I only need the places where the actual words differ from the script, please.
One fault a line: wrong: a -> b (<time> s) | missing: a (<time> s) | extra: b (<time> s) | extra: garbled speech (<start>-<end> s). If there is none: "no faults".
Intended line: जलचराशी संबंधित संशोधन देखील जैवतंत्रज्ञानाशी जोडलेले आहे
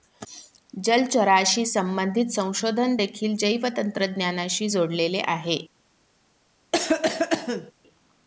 no faults